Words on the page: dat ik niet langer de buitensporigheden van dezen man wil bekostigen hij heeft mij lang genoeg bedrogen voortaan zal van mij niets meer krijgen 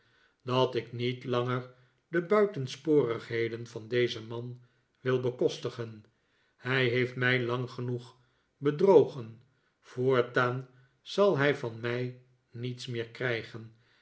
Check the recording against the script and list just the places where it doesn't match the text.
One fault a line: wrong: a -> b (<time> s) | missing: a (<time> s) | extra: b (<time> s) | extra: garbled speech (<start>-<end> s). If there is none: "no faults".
extra: hij (11.4 s)